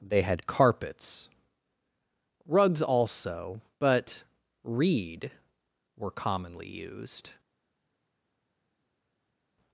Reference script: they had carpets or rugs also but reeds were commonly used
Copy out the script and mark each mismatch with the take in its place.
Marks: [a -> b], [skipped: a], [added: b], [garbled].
they had carpets [skipped: or] rugs also but [reeds -> reed] were commonly used